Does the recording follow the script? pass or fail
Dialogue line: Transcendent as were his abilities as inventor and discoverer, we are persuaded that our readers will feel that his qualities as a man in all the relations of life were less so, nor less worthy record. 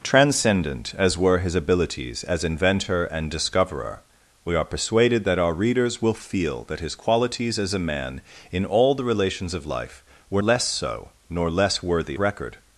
pass